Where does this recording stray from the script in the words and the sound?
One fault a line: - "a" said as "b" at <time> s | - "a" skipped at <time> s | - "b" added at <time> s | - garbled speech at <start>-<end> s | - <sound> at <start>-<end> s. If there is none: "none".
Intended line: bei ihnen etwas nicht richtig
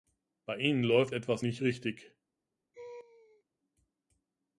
- "läuft" added at 0.8 s
- laugh at 2.7-3.4 s